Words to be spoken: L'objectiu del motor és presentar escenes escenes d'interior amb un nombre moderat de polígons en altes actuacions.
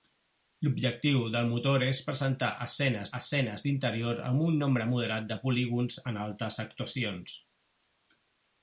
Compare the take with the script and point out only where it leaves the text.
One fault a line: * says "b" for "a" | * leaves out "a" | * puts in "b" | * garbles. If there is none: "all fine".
all fine